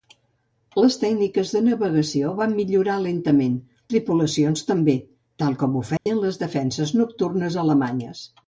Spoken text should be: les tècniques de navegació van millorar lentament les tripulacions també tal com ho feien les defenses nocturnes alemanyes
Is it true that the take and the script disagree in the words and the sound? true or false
true